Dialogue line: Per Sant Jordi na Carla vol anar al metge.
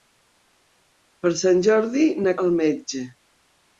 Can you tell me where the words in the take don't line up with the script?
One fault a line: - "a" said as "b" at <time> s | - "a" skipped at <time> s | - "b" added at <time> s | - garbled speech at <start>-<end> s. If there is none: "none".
- "Carla vol anar" skipped at 2.3 s